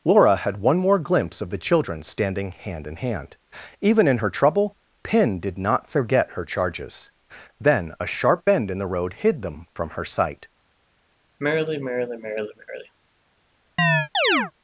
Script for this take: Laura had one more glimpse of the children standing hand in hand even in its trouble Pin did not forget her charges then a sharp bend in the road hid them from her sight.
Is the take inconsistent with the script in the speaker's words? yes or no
yes